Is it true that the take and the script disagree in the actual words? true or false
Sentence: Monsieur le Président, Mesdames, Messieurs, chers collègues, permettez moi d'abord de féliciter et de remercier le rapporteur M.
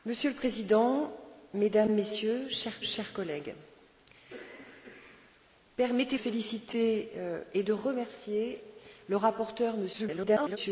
true